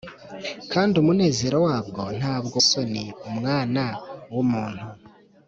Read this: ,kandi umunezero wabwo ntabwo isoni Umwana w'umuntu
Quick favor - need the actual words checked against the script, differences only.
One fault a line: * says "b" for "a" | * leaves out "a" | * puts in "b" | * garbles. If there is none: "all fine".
all fine